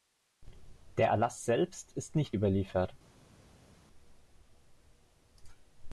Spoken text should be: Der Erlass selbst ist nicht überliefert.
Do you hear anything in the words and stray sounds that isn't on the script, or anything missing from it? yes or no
no